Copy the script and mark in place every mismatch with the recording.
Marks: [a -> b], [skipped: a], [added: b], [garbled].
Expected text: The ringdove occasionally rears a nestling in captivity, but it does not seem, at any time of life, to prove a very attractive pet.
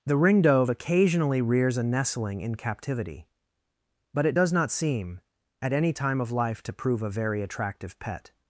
The ringdove occasionally rears a nestling in captivity, but it does not seem, at any time of life, to prove a very attractive pet.